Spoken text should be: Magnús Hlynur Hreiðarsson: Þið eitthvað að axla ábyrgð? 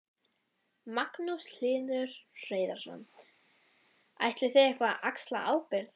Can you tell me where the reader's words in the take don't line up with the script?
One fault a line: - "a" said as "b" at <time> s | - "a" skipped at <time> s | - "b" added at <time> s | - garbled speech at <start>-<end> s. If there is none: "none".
- "Ætlið" added at 4.3 s